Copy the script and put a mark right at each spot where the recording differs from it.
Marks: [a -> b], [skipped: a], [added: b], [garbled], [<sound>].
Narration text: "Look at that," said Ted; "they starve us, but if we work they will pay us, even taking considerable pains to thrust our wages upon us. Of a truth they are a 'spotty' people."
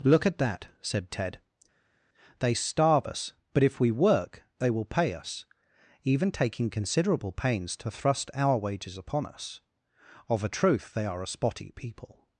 "Look at that," said Ted; "they starve us, but if we work they will pay us, even taking considerable pains to thrust our wages upon us. Of a truth they are a 'spotty' people."